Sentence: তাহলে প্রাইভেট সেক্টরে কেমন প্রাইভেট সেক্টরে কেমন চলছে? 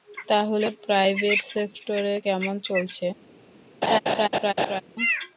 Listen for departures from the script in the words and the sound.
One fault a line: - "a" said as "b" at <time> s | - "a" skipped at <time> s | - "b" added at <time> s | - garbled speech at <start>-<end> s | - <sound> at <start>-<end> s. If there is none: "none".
- "প্রাইভেট সেক্টরে কেমন" skipped at 2.5 s
- laugh at 3.8-4.8 s